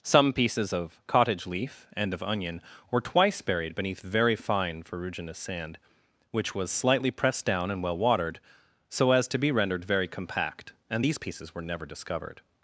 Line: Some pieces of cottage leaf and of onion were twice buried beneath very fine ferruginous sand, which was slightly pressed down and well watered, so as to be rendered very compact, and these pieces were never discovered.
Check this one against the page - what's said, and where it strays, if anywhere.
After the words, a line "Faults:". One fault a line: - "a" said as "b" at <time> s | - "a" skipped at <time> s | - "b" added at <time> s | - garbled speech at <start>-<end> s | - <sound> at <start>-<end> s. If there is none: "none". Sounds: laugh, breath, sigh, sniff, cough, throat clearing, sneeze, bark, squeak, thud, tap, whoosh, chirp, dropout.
Some pieces of cottage leaf and of onion were twice buried beneath very fine ferruginous sand, which was slightly pressed down and well watered, so as to be rendered very compact, and these pieces were never discovered.
Faults:
none